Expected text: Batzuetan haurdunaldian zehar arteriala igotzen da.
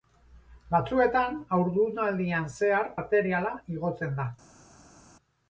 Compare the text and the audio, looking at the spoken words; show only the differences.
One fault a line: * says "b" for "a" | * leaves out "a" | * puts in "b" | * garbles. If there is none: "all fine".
all fine